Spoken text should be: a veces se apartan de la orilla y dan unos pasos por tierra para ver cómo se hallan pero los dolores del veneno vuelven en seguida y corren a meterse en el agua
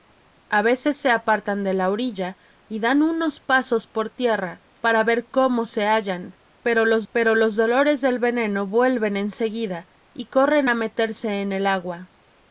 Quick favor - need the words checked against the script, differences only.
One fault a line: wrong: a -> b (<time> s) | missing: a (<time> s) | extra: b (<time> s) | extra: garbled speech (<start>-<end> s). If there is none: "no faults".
extra: pero los (7.1 s)